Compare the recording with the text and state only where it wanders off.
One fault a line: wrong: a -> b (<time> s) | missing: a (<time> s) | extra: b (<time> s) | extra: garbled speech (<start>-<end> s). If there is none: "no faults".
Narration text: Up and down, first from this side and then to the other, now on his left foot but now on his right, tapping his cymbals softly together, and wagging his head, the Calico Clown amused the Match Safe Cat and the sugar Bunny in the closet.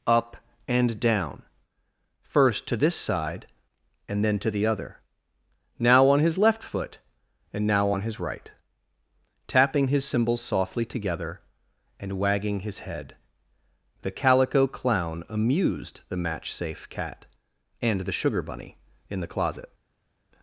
wrong: from -> to (2.7 s)
wrong: but -> and (7.5 s)